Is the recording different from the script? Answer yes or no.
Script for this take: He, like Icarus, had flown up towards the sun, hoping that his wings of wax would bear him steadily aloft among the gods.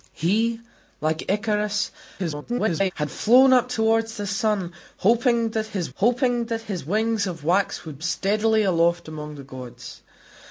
yes